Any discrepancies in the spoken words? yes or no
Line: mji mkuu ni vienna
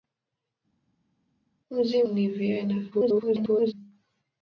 yes